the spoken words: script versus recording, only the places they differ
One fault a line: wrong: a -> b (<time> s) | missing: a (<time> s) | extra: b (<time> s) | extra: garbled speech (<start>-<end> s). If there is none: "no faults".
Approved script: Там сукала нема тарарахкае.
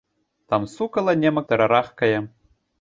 no faults